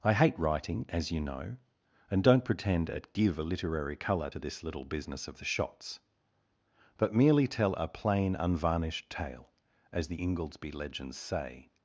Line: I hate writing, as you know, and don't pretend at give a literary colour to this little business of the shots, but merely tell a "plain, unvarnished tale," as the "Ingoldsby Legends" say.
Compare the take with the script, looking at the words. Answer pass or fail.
pass